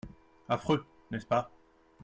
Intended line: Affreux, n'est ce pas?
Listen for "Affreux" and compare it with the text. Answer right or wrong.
right